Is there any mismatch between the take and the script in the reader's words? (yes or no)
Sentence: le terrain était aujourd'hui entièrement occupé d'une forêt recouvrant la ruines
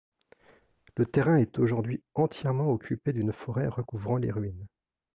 yes